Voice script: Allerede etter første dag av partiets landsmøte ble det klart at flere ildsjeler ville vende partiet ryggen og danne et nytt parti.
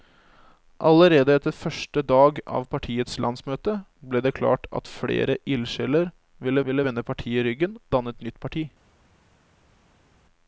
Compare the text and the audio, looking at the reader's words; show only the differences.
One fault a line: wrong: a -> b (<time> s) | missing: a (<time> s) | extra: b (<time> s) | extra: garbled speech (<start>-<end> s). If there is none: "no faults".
extra: ville (6.7 s)
missing: og (7.8 s)